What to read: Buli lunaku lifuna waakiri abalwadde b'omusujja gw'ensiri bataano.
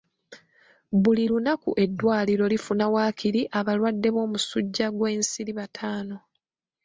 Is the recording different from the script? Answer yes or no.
yes